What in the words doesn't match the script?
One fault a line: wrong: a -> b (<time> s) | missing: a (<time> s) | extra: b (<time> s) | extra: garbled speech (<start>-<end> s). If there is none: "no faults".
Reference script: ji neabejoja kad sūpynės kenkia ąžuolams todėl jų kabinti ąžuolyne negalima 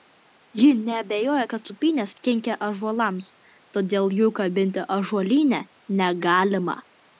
no faults